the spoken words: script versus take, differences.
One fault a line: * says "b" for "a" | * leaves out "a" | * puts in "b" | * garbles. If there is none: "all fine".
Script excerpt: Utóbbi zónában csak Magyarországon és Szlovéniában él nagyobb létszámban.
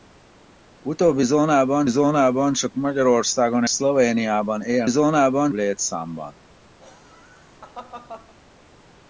* puts in "zónában"
* leaves out "és"
* says "zónában" for "nagyobb"